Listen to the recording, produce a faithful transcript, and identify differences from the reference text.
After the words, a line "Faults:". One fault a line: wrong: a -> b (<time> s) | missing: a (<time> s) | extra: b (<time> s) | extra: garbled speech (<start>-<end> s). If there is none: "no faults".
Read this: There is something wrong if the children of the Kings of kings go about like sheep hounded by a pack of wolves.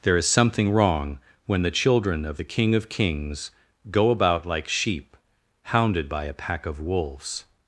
There is something wrong when the children of the King of kings go about like sheep hounded by a pack of wolves.
Faults:
wrong: if -> when (1.4 s)
wrong: Kings -> King (2.4 s)